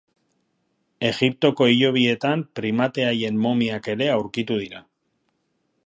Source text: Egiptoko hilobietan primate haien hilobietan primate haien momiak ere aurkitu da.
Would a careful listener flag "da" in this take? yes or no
yes